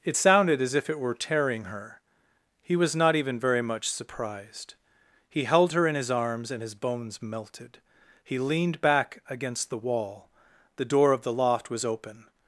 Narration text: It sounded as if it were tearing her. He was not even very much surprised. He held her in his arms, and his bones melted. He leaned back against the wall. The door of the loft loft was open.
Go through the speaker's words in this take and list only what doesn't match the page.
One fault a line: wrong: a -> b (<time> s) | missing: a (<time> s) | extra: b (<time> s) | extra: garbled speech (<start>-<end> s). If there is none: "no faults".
missing: loft (11.7 s)